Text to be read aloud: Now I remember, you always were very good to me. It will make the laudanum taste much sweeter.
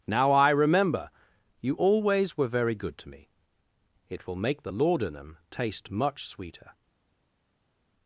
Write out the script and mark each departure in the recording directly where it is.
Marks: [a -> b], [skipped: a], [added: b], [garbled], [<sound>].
Now I remember, you always were very good to me. It will make the laudanum taste much sweeter.